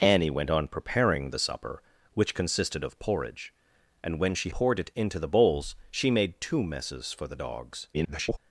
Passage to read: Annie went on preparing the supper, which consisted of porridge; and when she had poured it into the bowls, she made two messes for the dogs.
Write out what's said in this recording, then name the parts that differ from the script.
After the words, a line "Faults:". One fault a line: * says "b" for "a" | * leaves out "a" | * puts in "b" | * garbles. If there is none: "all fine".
Annie went on preparing the supper, which consisted of porridge; and when she poured it into the bowls, she made two messes for the dogs. [garbled]
Faults:
* leaves out "had"
* garbles